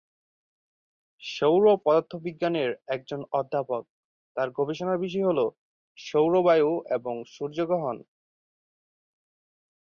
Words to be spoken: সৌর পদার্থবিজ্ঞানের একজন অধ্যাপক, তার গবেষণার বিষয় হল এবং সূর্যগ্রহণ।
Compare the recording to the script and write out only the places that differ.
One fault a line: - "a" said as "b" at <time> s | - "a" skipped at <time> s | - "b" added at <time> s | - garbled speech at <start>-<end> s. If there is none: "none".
- "সৌর বায়ু" added at 6.0 s